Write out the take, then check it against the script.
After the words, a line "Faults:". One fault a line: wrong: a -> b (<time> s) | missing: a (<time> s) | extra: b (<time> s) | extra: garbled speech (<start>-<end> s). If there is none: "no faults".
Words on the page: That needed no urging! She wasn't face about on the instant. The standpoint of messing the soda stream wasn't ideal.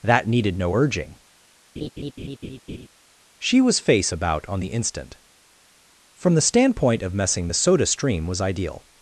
That needed no urging! She was face about on the instant. From the standpoint of messing the soda stream was ideal.
Faults:
wrong: wasn't -> was (3.6 s)
extra: From (6.2 s)
wrong: wasn't -> was (8.3 s)